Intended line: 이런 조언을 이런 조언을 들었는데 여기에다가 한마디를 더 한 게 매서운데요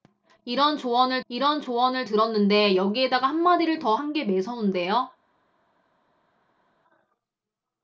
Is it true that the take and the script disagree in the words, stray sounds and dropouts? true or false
false